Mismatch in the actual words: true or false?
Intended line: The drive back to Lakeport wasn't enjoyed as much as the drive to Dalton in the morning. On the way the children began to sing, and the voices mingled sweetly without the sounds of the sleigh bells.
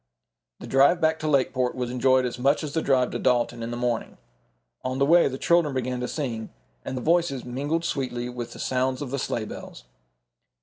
true